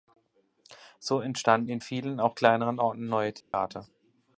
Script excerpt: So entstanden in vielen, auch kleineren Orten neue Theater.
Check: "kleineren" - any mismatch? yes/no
no